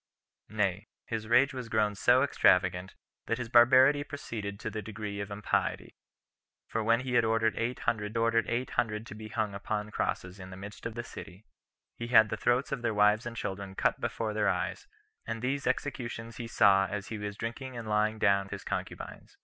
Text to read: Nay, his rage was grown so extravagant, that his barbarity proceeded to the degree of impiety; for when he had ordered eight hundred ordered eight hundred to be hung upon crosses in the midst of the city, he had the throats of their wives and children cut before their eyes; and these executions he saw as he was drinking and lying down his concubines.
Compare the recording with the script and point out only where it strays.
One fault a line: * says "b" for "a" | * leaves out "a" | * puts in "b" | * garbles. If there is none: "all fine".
all fine